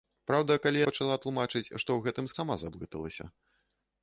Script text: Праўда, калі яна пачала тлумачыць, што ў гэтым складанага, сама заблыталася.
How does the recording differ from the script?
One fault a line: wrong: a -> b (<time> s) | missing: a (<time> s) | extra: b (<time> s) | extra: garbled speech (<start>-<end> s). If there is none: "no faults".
missing: яна (0.8 s)
missing: складанага (2.3 s)